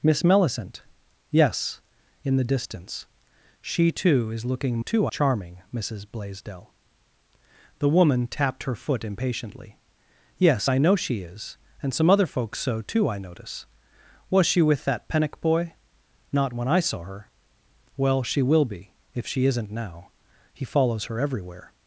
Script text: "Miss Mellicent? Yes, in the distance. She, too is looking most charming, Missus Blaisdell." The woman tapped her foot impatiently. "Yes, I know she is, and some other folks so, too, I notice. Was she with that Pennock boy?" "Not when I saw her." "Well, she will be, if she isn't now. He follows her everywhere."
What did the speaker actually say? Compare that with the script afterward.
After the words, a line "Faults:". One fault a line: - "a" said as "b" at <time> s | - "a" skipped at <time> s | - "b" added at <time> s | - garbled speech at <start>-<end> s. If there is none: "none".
"Miss Mellicent? Yes, in the distance. She, too is looking too charming, Missus Blaisdell." The woman tapped her foot impatiently. "Yes, I know she is, and some other folks so, too, I notice. Was she with that Pennock boy?" "Not when I saw her." "Well, she will be, if she isn't now. He follows her everywhere."
Faults:
- "most" said as "too" at 4.8 s